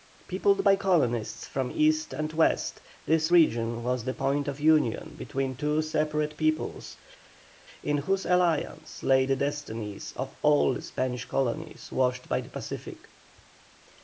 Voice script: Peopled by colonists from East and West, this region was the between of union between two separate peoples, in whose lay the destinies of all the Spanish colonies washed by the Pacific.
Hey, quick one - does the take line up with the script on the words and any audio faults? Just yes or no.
no